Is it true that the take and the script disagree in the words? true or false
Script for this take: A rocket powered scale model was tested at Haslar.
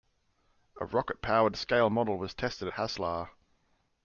false